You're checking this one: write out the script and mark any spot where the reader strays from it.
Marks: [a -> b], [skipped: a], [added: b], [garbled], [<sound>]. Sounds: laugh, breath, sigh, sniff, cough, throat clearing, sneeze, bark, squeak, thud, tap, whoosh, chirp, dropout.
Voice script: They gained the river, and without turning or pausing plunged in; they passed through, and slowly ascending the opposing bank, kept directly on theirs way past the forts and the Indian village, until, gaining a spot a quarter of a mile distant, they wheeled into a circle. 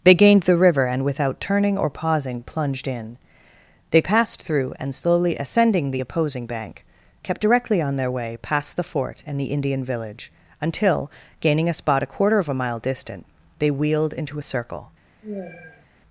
They gained the river, and without turning or pausing plunged in; they passed through, and slowly ascending the opposing bank, kept directly on [theirs -> their] way past the [forts -> fort] and the Indian village, until, gaining a spot a quarter of a mile distant, they wheeled into a circle. [sigh]